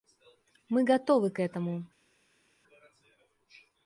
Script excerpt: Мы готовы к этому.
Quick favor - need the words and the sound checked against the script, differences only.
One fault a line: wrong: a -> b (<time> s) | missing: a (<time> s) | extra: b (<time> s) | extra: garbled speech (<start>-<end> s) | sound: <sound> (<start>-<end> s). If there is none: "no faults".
no faults